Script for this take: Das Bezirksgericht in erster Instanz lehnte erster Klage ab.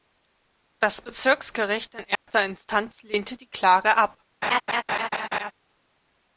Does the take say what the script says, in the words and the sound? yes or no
no